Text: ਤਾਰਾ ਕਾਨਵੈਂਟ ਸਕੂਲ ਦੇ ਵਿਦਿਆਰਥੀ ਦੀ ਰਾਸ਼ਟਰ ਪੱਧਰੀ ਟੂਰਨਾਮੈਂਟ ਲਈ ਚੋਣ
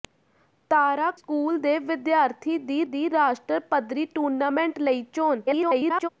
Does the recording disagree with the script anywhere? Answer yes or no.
yes